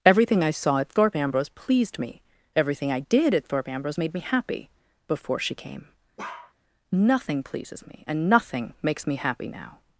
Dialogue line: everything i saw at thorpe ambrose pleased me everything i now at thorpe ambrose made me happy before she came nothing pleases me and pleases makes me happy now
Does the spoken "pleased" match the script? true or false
true